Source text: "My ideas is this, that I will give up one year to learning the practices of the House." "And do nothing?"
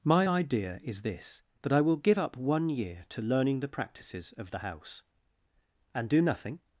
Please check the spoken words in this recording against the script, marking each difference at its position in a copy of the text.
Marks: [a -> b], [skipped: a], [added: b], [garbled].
"My [ideas -> idea] is this, that I will give up one year to learning the practices of the House." "And do nothing?"